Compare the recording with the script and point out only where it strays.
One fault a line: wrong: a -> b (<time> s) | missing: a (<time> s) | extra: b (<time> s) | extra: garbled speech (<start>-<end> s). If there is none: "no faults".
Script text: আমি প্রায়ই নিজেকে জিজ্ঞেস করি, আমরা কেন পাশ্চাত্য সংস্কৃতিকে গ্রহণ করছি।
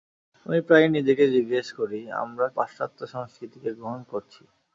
missing: কেন (2.5 s)